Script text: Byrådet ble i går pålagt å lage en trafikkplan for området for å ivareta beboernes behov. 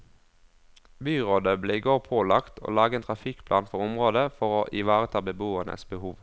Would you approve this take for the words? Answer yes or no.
yes